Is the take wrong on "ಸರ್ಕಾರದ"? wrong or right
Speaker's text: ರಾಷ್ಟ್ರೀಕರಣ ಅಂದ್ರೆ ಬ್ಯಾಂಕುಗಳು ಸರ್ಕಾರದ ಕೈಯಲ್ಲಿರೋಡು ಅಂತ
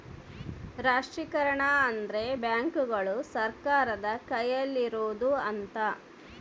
right